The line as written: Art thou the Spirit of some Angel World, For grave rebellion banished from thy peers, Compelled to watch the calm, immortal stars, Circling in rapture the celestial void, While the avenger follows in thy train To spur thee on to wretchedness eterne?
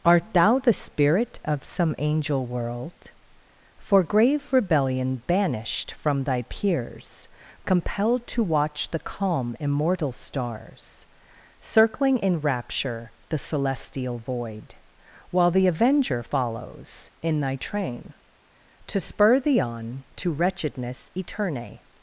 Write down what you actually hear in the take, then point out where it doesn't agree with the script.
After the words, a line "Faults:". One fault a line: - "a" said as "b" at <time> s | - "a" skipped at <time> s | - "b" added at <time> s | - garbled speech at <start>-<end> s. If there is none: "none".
Art thou the Spirit of some Angel World, For grave rebellion banished from thy peers, Compelled to watch the calm, immortal stars, Circling in rapture the celestial void, While the avenger follows in thy train To spur thee on to wretchedness eterne?
Faults:
none